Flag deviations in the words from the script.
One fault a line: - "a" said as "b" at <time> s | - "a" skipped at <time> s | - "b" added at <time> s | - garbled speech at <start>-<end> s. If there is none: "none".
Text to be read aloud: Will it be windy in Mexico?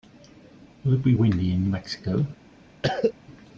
none